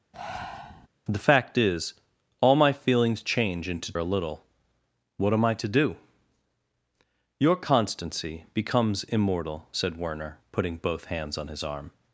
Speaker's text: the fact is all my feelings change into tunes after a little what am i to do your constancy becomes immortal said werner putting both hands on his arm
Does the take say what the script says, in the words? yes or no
no